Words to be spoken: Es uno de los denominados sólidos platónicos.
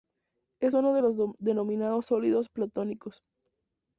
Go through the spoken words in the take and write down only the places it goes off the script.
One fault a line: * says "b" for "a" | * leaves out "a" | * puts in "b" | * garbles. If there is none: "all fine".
all fine